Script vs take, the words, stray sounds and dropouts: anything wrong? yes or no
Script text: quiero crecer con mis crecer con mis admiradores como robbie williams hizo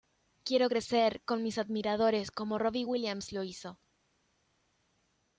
yes